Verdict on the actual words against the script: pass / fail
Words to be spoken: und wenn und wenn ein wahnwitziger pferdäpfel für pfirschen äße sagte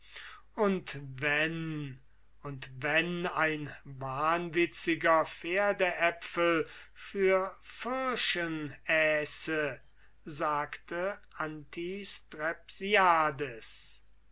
pass